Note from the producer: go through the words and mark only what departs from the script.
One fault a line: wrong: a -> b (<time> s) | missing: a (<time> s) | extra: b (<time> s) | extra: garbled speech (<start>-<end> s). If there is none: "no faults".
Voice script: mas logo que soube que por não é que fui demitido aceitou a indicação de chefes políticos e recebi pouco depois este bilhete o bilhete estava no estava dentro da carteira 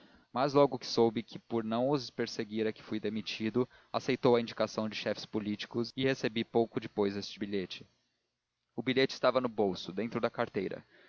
extra: os perseguir (1.9 s)
wrong: estava -> bolso (9.5 s)